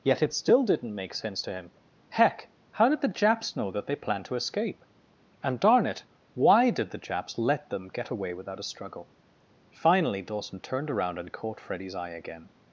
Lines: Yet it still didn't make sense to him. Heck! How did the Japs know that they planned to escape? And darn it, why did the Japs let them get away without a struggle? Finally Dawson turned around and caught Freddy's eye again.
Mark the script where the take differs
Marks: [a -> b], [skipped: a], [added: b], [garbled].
Yet it still didn't make sense to him. Heck! How did the Japs know that they planned to escape? And darn it, why did the Japs let them get away without a struggle? Finally Dawson turned around and caught Freddy's eye again.